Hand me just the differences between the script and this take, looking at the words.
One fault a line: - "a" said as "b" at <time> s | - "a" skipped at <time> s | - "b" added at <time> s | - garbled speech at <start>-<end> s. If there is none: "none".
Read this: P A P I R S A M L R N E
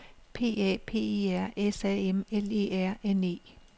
- "E" added at 2.5 s